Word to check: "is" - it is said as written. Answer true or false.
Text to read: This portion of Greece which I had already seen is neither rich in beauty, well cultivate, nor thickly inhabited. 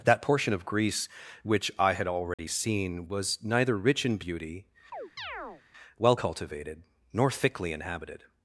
false